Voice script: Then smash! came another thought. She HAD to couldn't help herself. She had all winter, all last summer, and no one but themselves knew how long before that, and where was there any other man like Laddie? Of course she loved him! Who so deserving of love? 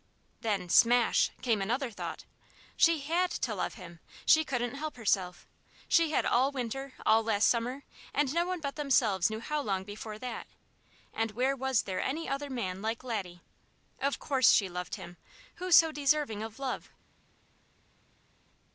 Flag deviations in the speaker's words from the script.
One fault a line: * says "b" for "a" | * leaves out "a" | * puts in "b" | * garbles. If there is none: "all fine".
* puts in "love him She"